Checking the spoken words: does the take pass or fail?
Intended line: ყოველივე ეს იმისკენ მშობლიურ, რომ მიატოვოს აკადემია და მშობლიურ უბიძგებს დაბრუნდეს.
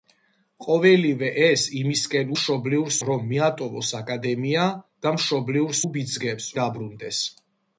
pass